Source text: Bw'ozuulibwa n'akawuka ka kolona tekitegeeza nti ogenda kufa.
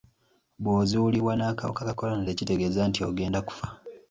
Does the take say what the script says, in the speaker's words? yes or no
yes